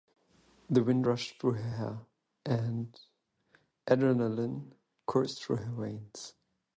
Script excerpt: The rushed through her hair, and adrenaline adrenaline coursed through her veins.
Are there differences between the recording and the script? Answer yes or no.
yes